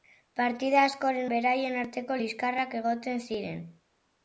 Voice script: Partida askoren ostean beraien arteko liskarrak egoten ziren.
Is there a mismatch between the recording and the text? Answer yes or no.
yes